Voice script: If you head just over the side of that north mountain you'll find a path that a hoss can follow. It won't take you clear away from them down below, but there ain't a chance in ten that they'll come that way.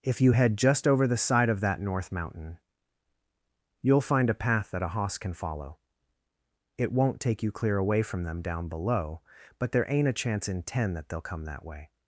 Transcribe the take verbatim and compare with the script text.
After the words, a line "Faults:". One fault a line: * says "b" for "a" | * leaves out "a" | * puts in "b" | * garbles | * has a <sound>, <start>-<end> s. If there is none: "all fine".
If you head just over the side of that north mountain you'll find a path that a hoss can follow. It won't take you clear away from them down below, but there ain't a chance in ten that they'll come that way.
Faults:
all fine